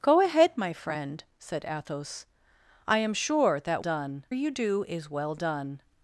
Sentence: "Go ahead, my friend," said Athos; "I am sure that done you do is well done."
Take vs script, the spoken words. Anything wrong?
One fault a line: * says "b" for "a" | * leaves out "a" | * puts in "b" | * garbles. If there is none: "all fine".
all fine